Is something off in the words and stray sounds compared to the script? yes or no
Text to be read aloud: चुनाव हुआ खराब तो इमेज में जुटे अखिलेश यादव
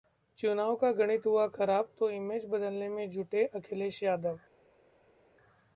yes